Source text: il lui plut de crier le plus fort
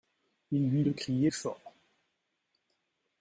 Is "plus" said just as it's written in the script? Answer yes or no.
no